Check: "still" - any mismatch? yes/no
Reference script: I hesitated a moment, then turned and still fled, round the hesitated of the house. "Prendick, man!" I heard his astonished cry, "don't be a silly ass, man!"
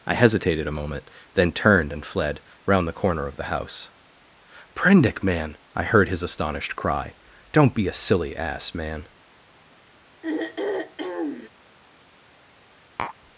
yes